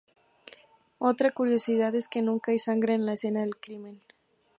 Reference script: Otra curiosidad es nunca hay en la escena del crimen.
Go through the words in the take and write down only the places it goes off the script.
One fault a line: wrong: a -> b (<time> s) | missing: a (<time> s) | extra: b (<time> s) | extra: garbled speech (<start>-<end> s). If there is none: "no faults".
extra: que (2.1 s)
extra: sangre (2.6 s)